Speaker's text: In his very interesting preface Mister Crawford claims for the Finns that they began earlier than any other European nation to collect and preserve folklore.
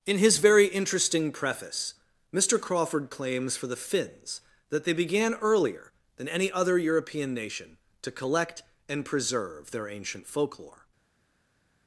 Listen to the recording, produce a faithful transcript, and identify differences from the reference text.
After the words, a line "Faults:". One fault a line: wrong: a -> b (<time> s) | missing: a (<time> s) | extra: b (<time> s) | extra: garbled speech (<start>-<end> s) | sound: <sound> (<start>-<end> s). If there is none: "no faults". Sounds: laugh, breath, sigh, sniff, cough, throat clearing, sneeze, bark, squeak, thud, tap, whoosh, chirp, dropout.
In his very interesting preface Mister Crawford claims for the Finns that they began earlier than any other European nation to collect and preserve their ancient folklore.
Faults:
extra: their ancient (9.7 s)